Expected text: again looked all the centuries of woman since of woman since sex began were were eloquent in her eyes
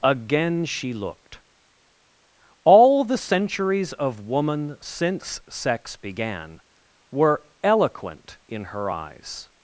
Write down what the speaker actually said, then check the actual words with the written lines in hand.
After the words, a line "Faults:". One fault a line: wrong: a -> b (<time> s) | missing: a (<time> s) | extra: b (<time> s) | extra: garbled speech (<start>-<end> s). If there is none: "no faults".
again she looked all the centuries of woman since sex began were eloquent in her eyes
Faults:
extra: she (0.7 s)
missing: of woman since (5.4 s)
missing: were (7.5 s)